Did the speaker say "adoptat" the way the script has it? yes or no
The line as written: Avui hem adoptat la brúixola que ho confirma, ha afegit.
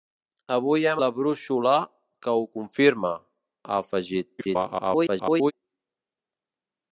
no